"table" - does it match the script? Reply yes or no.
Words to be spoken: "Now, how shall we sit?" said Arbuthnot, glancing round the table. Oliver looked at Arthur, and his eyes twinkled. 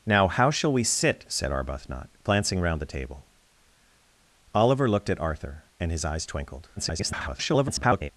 yes